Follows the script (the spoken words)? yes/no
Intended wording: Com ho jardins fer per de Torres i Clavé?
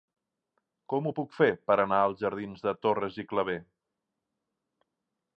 no